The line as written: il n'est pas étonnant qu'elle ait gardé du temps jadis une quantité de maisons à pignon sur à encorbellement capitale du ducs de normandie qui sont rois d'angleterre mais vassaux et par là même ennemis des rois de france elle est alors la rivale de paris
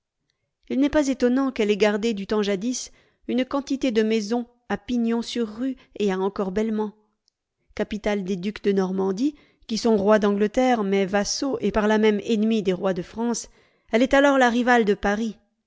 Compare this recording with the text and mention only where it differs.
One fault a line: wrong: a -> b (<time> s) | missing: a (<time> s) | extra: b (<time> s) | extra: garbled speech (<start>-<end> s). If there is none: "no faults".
extra: rue et (5.5 s)
wrong: du -> des (8.2 s)